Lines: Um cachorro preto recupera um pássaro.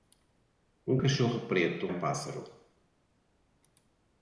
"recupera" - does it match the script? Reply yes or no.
no